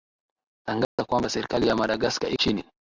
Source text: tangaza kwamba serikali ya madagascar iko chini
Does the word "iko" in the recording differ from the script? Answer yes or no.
yes